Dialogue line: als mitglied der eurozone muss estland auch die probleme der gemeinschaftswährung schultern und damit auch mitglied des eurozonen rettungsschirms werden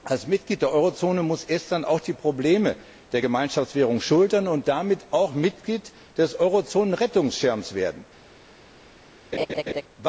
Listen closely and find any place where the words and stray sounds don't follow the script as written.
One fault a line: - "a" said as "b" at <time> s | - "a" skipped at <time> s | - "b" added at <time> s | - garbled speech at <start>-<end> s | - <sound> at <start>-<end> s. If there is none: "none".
- laugh at 9.3-9.8 s